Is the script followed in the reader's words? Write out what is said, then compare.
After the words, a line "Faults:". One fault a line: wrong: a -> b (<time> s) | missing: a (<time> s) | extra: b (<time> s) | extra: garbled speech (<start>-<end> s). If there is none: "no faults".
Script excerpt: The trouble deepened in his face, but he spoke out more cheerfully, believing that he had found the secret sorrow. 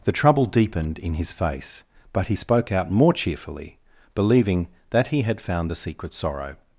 The trouble deepened in his face, but he spoke out more cheerfully, believing that he had found the secret sorrow.
Faults:
no faults